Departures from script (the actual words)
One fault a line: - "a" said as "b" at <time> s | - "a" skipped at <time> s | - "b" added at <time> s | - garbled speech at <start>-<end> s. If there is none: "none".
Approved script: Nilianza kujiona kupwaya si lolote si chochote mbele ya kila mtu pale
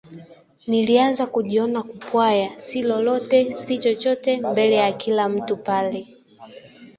none